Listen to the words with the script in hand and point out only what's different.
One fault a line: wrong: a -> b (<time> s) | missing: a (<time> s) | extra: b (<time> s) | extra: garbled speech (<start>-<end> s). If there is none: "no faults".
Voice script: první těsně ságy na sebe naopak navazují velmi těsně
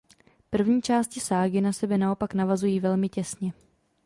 wrong: těsně -> části (0.8 s)